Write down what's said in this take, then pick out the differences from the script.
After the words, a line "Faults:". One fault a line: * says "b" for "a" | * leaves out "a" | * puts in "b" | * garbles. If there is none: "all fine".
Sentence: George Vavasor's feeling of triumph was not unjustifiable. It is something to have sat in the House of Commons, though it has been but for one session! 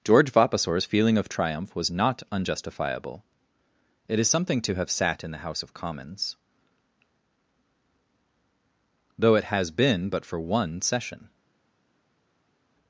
George Vavasor's feeling of triumph was not unjustifiable. It is something to have sat in the House of Commons, though it has been but for one session!
Faults:
all fine